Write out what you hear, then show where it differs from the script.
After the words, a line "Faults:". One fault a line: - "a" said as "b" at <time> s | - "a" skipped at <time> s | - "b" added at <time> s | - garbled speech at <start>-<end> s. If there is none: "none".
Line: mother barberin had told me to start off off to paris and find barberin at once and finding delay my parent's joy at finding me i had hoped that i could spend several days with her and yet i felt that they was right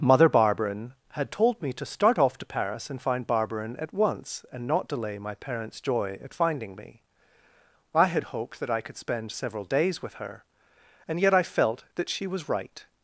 mother barberin had told me to start off to paris and find barberin at once and not delay my parent's joy at finding me i had hoped that i could spend several days with her and yet i felt that she was right
Faults:
- "off" skipped at 2.4 s
- "finding" said as "not" at 4.7 s
- "they" said as "she" at 12.1 s